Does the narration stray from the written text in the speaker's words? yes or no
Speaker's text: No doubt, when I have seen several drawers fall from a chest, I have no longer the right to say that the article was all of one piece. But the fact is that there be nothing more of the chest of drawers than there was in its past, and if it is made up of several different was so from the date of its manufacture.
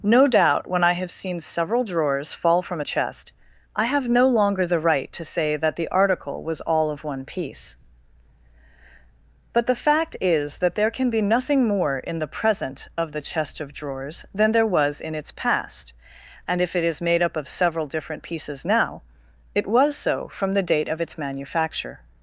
yes